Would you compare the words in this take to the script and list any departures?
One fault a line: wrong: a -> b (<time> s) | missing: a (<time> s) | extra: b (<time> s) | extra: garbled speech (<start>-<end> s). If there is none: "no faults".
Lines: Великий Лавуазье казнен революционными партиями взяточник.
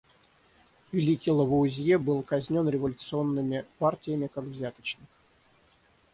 extra: был (2.0 s)
extra: как (4.3 s)